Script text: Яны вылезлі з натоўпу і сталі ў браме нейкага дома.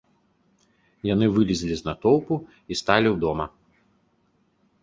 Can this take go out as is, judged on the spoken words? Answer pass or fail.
fail